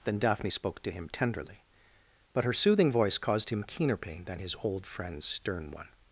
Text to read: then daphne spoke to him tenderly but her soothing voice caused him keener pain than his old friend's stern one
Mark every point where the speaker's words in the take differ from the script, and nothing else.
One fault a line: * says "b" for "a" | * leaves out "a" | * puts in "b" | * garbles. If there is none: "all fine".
all fine